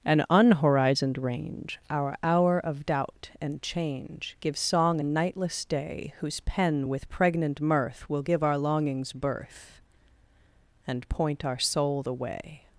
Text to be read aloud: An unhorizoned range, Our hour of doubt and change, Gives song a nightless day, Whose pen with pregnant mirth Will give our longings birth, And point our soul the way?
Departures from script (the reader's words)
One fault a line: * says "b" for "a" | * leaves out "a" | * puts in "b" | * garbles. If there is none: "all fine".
all fine